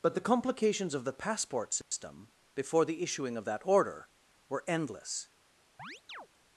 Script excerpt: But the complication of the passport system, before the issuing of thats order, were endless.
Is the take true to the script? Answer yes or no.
no